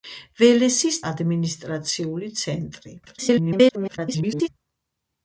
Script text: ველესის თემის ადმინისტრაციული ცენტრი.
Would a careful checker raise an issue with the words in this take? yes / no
yes